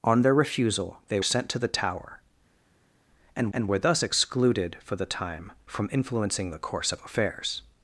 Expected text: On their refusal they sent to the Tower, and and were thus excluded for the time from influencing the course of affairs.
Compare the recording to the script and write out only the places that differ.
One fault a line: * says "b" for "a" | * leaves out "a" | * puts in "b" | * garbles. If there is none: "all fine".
all fine